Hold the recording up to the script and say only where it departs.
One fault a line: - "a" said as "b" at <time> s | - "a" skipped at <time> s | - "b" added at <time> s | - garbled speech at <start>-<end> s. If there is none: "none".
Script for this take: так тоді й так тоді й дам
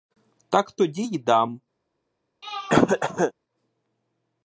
- "так тоді й" skipped at 1.2 s